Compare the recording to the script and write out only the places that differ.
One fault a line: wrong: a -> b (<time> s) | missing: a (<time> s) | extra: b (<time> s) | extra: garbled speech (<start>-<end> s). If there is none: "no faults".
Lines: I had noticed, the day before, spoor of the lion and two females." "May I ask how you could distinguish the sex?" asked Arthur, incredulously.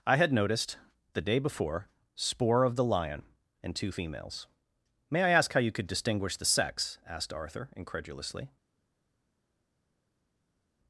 no faults